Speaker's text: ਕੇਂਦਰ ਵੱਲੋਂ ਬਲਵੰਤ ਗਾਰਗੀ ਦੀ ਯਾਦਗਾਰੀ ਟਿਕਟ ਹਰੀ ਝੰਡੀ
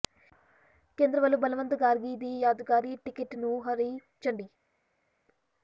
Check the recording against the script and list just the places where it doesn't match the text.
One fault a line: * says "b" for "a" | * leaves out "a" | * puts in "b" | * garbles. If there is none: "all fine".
* puts in "ਨੂੰ"